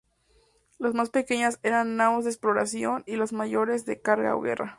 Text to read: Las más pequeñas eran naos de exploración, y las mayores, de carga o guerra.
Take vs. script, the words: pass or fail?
pass